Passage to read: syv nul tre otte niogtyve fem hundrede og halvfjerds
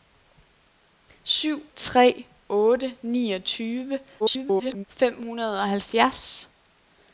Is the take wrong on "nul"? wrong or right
wrong